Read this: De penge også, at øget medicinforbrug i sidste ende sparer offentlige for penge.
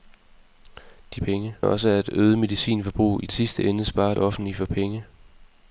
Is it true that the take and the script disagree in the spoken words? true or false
false